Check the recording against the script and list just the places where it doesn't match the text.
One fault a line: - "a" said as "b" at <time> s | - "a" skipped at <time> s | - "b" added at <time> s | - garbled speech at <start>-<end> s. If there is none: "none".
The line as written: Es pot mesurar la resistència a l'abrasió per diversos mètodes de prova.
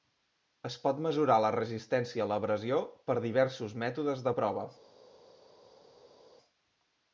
none